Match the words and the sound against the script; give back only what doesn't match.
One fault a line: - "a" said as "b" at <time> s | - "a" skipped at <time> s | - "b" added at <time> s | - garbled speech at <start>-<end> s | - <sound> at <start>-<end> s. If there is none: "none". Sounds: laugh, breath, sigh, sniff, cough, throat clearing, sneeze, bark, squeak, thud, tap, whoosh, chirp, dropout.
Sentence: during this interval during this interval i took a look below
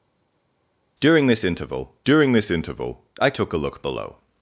none